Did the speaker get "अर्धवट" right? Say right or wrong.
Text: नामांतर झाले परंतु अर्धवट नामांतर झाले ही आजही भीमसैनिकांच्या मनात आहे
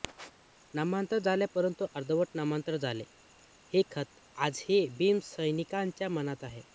right